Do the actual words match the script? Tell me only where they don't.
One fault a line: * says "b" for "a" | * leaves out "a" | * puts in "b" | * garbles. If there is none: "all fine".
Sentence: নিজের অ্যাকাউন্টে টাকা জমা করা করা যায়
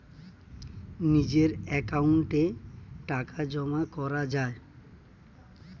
* leaves out "করা"